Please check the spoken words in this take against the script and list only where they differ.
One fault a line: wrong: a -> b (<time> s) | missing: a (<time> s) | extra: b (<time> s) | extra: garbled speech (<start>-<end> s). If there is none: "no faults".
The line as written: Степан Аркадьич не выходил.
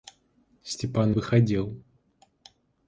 missing: Аркадьич не (1.1 s)